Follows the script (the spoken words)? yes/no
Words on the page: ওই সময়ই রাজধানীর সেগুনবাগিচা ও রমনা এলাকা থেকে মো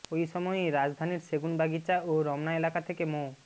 yes